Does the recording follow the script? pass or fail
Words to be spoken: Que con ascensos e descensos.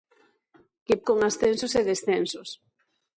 pass